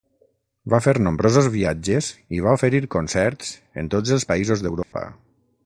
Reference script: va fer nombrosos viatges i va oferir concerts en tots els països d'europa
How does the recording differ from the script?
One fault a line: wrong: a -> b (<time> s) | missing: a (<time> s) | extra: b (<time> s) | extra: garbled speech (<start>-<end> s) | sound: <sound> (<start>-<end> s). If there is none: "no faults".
sound: dropout (4.8-4.9 s)